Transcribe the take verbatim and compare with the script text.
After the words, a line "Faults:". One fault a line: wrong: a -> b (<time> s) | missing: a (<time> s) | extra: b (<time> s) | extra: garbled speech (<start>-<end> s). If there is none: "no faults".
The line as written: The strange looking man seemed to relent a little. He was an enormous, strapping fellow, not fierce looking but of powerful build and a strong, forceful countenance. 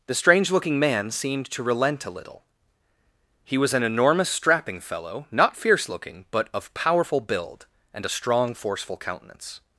The strange looking man seemed to relent a little. He was an enormous, strapping fellow, not fierce looking but of powerful build and a strong, forceful countenance.
Faults:
no faults